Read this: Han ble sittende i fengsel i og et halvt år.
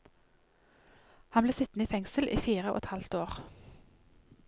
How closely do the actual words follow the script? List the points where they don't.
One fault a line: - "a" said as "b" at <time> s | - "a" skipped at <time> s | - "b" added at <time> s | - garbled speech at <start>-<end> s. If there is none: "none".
- "fire" added at 2.4 s